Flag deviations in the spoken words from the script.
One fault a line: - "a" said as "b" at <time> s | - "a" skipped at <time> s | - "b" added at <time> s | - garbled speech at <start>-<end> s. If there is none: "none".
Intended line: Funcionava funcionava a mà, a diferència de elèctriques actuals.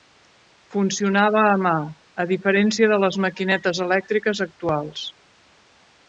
- "funcionava" skipped at 1.4 s
- "les maquinetes" added at 3.0 s